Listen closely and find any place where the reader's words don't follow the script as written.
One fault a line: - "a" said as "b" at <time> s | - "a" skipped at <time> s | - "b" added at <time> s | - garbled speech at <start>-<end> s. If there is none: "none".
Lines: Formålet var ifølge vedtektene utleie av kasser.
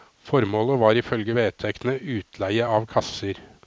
none